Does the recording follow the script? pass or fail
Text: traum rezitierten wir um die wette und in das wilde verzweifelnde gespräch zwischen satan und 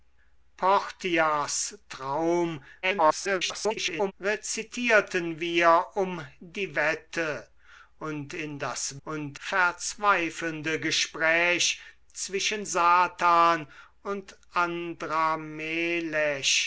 fail